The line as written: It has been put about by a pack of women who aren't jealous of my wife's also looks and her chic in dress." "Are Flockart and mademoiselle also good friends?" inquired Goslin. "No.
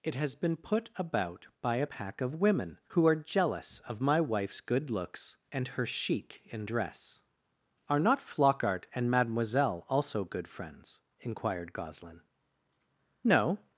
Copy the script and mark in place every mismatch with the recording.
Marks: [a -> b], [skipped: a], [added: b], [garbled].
It has been put about by a pack of women who [aren't -> are] jealous of my wife's [also -> good] looks and her chic in dress." "Are [added: not] Flockart and mademoiselle also good friends?" inquired Goslin. "No.